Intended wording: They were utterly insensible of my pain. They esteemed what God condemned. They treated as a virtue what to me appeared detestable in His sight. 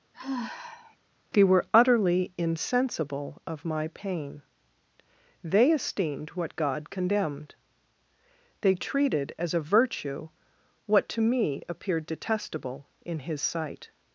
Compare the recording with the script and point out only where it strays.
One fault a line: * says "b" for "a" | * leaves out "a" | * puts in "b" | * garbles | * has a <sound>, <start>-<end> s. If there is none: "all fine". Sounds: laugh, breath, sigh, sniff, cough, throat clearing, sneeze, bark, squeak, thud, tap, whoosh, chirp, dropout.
* has a sigh, 0.1-1.0 s